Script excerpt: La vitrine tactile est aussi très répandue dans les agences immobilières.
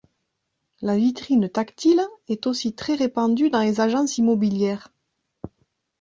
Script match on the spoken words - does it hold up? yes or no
yes